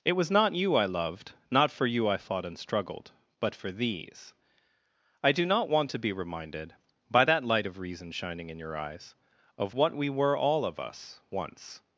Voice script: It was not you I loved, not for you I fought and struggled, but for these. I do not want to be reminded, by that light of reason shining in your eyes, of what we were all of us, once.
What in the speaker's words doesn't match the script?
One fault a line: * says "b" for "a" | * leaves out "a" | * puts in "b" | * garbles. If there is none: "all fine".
all fine